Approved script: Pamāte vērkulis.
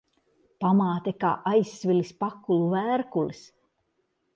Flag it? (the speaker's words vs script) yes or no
yes